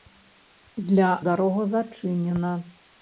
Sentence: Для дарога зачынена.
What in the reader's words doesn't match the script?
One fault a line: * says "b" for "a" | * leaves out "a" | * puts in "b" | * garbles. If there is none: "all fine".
all fine